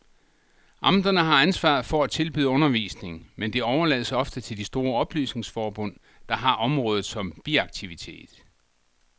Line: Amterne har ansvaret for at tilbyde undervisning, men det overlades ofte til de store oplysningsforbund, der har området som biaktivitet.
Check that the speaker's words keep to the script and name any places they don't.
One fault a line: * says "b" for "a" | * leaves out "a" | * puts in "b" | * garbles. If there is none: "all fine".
all fine